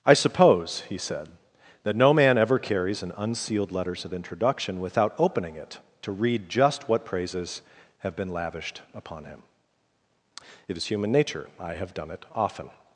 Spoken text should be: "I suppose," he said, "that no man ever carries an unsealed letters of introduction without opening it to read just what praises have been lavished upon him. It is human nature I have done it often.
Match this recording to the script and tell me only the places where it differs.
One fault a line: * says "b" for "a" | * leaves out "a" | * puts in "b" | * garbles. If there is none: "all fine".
all fine